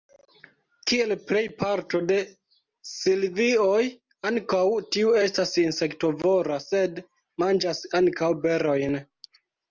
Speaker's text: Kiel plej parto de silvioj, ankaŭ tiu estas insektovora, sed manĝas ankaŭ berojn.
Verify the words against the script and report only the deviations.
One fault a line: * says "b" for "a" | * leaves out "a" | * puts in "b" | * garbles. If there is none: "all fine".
all fine